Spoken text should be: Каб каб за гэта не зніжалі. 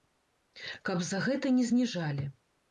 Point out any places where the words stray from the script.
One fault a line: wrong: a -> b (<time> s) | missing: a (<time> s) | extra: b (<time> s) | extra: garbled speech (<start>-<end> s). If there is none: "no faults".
missing: каб (1.0 s)